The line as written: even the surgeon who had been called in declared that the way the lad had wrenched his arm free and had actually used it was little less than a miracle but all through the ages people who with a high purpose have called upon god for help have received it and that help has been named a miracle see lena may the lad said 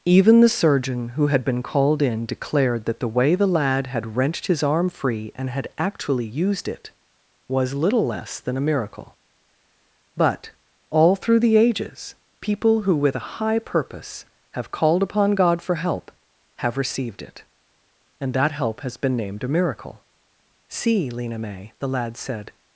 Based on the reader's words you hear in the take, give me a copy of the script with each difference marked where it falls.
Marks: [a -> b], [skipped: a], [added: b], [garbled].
even the surgeon who had been called in declared that the way the lad had wrenched his arm free and had actually used it was little less than a miracle but all through the ages people who with a high purpose have called upon god for help have received it and that help has been named a miracle see lena may the lad said